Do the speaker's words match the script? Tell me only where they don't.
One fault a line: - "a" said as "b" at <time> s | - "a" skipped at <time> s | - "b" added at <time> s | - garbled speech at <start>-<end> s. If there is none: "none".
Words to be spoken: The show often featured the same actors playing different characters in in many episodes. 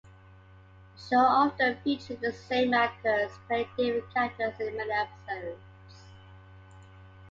- "in" skipped at 4.8 s